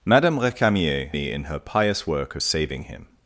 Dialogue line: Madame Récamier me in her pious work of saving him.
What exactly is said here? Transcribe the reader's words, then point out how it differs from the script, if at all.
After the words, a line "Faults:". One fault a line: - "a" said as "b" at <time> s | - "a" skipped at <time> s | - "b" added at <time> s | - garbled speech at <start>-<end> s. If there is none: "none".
Madame Récamier me in her pious work of saving him.
Faults:
none